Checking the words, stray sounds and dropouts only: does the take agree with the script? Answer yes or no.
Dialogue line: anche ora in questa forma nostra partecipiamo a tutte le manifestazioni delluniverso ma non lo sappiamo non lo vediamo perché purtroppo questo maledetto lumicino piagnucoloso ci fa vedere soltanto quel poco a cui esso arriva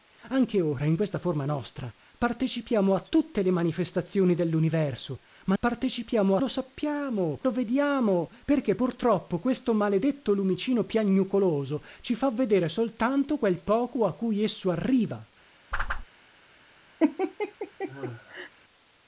no